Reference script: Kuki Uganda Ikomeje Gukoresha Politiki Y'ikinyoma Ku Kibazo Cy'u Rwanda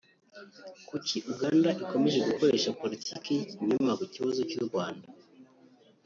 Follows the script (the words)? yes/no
yes